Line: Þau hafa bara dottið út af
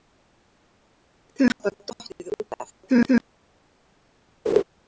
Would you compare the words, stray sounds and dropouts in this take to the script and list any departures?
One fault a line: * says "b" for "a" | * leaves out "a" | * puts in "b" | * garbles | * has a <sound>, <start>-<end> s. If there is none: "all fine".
* leaves out "hafa"
* garbles
* has a laugh, 4.5-4.6 s